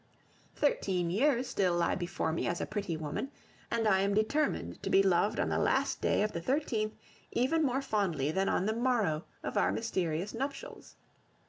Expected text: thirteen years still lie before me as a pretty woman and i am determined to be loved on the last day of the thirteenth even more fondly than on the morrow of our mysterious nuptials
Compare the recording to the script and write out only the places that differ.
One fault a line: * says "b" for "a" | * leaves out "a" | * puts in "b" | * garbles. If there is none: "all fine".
all fine